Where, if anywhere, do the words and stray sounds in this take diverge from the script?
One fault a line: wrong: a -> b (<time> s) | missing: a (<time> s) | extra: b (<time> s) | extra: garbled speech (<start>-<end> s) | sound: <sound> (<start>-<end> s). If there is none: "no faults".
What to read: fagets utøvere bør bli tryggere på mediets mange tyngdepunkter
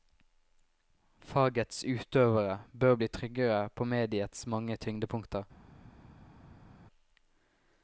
no faults